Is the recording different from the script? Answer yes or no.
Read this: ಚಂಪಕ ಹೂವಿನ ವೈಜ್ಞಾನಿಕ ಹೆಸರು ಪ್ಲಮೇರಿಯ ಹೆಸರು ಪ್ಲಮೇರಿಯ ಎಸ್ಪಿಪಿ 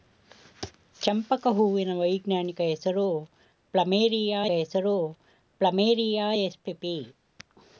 no